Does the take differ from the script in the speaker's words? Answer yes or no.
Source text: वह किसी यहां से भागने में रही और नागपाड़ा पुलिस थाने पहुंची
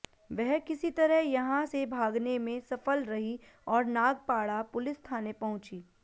yes